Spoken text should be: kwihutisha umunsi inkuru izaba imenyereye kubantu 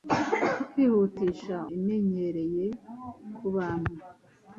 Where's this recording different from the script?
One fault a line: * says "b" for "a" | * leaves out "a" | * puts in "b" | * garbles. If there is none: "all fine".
* leaves out "umunsi inkuru izaba"